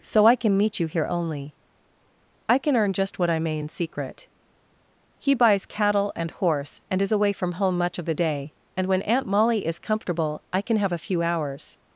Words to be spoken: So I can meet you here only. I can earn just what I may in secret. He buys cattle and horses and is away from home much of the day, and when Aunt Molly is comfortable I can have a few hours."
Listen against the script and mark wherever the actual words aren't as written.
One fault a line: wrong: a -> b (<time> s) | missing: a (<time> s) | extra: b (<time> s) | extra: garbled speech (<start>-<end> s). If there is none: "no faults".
wrong: horses -> horse (6.3 s)